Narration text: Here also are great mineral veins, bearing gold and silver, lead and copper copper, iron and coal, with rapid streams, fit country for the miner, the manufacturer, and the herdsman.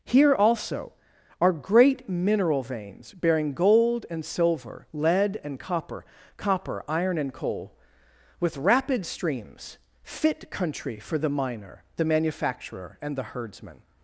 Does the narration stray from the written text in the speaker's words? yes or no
no